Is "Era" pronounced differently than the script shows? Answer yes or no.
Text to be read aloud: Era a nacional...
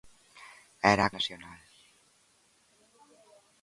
no